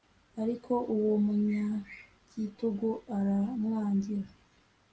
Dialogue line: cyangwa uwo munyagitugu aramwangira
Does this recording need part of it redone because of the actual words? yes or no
yes